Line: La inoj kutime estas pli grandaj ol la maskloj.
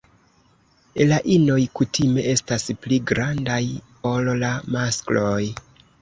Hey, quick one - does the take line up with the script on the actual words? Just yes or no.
yes